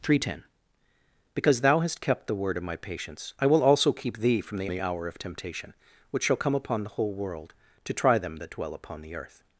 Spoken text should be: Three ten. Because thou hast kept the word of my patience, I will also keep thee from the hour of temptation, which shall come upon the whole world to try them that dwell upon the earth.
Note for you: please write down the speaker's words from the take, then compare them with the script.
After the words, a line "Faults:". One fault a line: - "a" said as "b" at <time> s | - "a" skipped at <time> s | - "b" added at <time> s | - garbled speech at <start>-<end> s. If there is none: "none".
Three ten. Because thou hast kept the word of my patience, I will also keep thee from the the hour of temptation, which shall come upon the whole world to try them that dwell upon the earth.
Faults:
- "the" added at 4.7 s